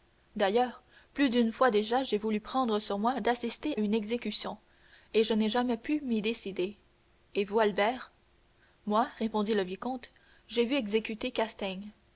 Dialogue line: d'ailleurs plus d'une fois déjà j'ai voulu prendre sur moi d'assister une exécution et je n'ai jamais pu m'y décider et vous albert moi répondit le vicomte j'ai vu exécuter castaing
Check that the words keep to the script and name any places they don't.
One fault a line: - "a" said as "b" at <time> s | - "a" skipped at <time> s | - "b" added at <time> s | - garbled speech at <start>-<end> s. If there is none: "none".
none